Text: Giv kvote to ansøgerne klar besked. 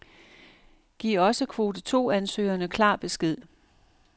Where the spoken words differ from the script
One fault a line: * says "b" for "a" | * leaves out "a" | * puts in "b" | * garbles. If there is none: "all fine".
* puts in "også"